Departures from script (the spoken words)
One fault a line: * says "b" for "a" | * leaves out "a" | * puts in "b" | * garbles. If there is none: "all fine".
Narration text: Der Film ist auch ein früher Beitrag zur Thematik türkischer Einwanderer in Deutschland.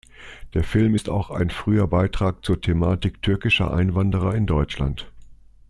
all fine